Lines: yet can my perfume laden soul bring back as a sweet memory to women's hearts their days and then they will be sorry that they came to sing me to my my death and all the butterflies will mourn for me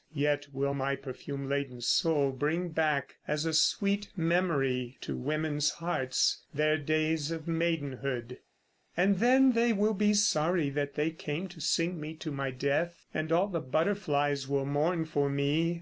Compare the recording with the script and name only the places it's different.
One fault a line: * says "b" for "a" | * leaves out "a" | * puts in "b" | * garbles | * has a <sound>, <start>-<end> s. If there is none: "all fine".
* says "will" for "can"
* puts in "of maidenhood"
* leaves out "my"